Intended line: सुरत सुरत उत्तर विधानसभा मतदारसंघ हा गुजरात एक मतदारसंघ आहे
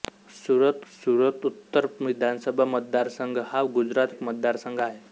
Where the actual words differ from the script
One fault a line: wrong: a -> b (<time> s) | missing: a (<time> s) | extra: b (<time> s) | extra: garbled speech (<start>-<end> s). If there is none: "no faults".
no faults